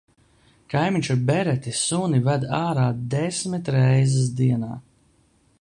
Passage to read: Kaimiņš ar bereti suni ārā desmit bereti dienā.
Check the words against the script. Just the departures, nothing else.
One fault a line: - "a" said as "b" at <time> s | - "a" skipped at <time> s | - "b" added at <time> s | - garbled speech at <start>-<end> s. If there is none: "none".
- "ved" added at 2.3 s
- "bereti" said as "reizes" at 3.8 s